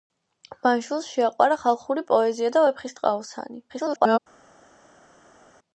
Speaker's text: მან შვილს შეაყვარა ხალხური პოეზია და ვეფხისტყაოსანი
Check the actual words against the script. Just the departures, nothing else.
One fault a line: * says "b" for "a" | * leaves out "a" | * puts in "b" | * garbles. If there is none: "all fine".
* garbles